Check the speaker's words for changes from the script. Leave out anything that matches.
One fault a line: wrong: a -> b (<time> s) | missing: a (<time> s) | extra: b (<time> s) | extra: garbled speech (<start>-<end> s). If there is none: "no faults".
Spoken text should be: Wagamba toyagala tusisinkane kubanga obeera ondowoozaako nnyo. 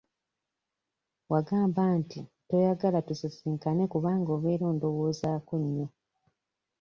extra: nti (2.0 s)